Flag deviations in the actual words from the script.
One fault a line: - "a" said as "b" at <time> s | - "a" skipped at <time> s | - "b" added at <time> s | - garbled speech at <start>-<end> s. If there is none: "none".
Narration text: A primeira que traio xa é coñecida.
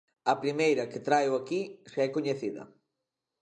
- "aquí" added at 1.4 s